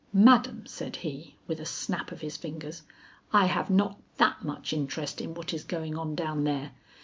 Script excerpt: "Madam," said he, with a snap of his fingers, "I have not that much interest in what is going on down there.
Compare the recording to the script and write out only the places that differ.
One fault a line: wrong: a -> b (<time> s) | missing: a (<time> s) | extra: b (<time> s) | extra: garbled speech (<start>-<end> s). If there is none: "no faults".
no faults